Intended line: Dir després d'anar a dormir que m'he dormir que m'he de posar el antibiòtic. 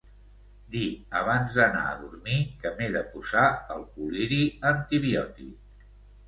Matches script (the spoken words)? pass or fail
fail